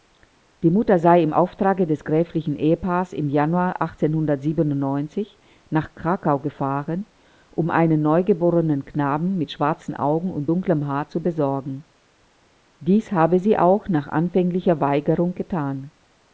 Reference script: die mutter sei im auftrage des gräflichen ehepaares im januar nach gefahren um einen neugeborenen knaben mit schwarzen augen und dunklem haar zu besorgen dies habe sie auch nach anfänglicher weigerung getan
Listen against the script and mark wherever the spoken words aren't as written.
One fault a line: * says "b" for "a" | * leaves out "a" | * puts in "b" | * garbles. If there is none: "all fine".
* puts in "krakau"